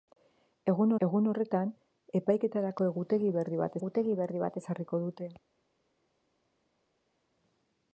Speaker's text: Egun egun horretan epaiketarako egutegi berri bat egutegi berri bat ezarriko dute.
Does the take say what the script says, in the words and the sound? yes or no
yes